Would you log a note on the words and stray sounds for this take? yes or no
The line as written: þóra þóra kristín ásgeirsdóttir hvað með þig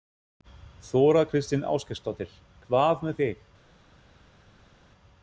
yes